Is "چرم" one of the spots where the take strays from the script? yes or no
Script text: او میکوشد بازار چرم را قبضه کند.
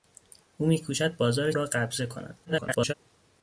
yes